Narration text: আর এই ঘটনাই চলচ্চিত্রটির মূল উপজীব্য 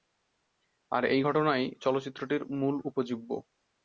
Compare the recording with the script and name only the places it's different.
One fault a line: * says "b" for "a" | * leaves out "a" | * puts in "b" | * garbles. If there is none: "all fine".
all fine